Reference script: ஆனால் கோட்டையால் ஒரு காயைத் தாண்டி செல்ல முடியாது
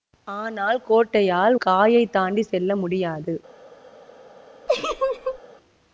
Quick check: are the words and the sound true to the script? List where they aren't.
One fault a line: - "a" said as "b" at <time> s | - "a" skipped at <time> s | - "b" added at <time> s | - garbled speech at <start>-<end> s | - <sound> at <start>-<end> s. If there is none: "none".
- "ஒரு" skipped at 1.6 s
- laugh at 4.7-5.4 s